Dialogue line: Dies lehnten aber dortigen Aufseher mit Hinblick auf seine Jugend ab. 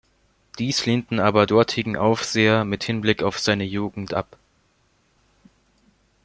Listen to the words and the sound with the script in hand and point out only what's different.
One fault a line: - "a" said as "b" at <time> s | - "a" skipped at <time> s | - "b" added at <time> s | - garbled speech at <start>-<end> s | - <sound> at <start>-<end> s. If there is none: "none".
none